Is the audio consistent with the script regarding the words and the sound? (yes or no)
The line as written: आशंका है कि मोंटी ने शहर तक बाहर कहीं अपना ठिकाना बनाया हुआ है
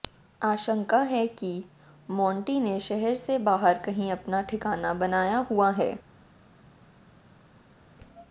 no